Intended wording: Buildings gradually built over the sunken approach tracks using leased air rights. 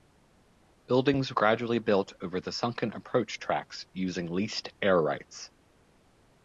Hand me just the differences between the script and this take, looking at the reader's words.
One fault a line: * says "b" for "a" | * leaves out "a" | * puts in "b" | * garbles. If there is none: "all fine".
all fine